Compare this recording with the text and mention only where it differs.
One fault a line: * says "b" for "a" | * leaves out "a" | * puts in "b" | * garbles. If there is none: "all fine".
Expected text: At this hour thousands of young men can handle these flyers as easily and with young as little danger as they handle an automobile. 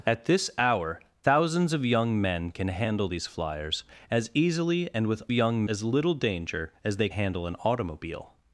all fine